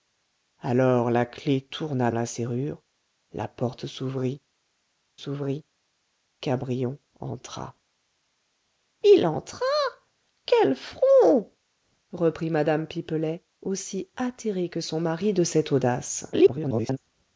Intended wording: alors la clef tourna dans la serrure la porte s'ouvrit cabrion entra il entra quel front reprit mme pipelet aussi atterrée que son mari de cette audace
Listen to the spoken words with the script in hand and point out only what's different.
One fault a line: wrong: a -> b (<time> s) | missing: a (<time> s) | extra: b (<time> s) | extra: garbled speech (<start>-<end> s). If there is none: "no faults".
missing: dans (2.1 s)
extra: s'ouvrit (5.1 s)
extra: garbled speech (16.3-17.0 s)